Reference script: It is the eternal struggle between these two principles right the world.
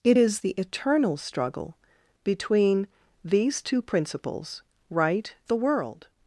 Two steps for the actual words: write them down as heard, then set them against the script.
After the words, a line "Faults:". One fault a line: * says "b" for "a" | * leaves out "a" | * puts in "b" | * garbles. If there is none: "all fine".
It is the eternal struggle between these two principles right the world.
Faults:
all fine